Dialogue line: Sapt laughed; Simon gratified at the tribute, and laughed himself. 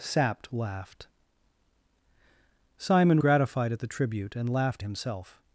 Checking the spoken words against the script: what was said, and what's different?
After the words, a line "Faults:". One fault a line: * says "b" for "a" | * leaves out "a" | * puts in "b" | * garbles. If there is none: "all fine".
Sapt laughed; Simon gratified at the tribute, and laughed himself.
Faults:
all fine